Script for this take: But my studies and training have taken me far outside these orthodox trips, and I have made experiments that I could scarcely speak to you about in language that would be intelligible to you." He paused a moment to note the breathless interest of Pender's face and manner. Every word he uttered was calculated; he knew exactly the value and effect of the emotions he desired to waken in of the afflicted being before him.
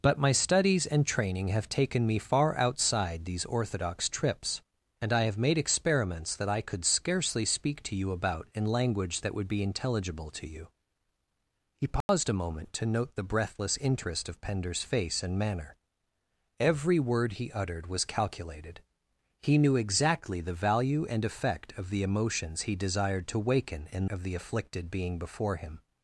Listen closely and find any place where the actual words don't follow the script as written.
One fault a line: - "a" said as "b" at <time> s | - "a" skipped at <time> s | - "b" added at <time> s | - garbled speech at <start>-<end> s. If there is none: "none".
none